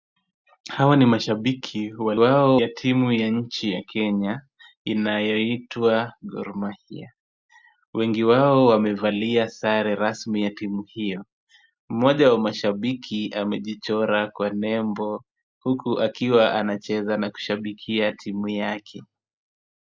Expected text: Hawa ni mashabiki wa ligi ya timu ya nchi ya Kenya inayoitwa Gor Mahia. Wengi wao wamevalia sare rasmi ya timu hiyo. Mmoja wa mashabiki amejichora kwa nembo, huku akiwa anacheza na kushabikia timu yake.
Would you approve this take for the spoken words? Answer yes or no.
no